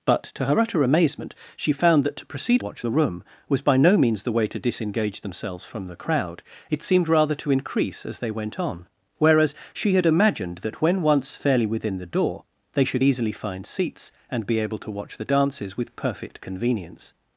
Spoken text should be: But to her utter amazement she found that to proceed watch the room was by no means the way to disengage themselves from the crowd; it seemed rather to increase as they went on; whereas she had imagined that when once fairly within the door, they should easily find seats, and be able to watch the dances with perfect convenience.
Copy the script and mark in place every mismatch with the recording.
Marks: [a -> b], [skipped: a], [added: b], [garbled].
But to her utter amazement she found that to proceed watch the room was by no means the way to disengage themselves from the crowd; it seemed rather to increase as they went on; whereas she had imagined that when once fairly within the door, they should easily find seats, and be able to watch the dances with perfect convenience.